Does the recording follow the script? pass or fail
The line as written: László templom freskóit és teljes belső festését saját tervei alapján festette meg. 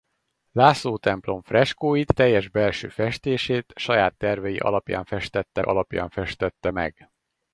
fail